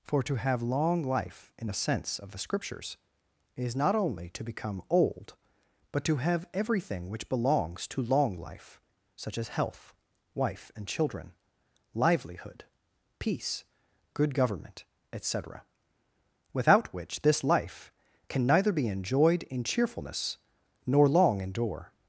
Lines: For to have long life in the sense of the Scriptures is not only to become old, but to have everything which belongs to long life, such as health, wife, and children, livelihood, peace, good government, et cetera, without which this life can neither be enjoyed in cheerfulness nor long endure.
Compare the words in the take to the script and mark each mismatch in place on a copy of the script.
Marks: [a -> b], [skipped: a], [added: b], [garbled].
For to have long life in the sense of the Scriptures is not only to become old, but to have everything which belongs to long life, such as health, wife, and children, livelihood, peace, good government, et cetera, without which this life can neither be enjoyed in cheerfulness nor long endure.